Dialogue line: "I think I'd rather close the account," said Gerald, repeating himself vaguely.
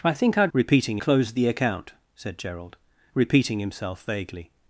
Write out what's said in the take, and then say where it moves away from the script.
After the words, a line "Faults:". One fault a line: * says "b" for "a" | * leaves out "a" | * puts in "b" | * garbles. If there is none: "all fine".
"I think I'd repeating close the account," said Gerald, repeating himself vaguely.
Faults:
* says "repeating" for "rather"